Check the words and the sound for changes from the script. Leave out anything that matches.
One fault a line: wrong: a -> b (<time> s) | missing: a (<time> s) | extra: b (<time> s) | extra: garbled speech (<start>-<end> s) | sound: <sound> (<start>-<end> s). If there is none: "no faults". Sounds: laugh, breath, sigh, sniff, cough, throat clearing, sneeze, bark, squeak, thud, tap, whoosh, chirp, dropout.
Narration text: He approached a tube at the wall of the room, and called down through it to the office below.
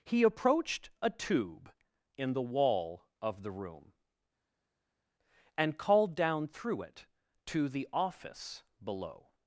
wrong: at -> in (2.2 s)